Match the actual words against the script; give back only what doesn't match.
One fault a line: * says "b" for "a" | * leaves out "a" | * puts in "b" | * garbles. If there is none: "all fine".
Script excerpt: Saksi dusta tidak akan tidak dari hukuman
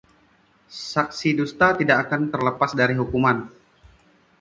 * says "terlepas" for "tidak"